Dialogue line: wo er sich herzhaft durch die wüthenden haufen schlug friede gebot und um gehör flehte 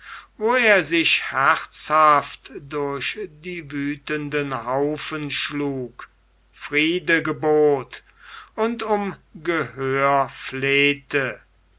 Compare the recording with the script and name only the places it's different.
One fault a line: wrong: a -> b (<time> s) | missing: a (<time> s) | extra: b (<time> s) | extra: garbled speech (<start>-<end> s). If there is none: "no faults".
no faults